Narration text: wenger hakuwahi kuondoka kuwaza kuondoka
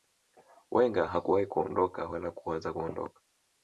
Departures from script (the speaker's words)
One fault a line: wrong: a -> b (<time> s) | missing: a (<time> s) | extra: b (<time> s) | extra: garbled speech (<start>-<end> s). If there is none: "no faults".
extra: wala (2.1 s)